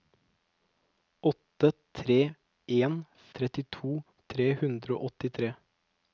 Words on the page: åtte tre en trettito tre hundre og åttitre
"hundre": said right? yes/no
yes